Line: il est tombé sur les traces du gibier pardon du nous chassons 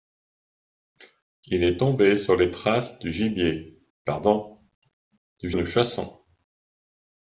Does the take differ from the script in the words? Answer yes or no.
no